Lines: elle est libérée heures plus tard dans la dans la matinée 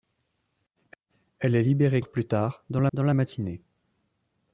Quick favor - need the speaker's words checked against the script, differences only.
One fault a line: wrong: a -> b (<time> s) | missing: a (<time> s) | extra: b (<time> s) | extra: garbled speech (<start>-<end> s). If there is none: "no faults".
no faults